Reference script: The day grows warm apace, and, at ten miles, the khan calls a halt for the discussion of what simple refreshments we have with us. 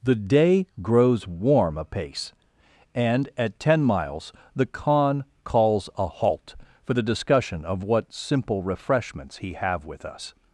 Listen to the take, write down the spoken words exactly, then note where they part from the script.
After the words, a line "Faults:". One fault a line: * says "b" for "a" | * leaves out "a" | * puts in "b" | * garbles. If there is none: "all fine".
The day grows warm apace, and, at ten miles, the khan calls a halt for the discussion of what simple refreshments he have with us.
Faults:
* says "he" for "we"